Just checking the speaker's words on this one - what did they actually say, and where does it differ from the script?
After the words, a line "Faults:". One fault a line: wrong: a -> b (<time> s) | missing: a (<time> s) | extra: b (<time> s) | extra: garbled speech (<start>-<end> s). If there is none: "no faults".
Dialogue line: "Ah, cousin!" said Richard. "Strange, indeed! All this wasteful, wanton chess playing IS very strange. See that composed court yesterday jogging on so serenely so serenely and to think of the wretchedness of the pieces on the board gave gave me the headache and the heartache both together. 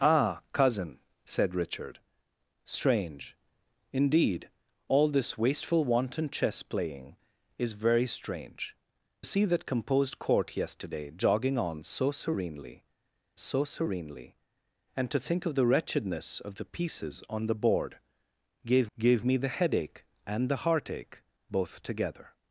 "Ah, cousin!" said Richard. "Strange, indeed! All this wasteful, wanton chess playing IS very strange. See that composed court yesterday jogging on so serenely so serenely and to think of the wretchedness of the pieces on the board gave gave me the headache and the heartache both together.
Faults:
no faults